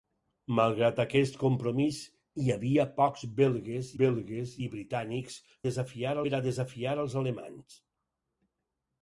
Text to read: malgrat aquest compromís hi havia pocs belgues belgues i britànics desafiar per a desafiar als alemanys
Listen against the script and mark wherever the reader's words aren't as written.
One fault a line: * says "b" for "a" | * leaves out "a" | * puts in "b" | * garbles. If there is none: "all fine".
all fine